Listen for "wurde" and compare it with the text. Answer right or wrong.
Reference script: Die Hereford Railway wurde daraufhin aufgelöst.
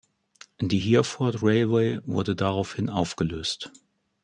right